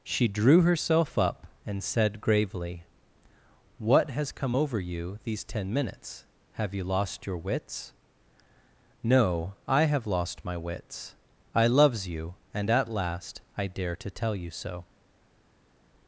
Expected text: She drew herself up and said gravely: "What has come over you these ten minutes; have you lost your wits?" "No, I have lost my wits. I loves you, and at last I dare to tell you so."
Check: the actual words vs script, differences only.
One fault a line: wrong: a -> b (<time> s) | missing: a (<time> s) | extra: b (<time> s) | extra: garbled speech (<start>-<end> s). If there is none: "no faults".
no faults